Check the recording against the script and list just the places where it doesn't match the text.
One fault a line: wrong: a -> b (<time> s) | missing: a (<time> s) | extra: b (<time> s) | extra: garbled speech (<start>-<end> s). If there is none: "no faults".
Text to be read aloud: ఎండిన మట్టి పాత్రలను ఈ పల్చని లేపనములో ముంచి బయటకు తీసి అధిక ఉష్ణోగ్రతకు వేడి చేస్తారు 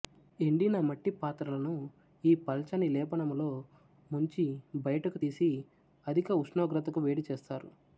no faults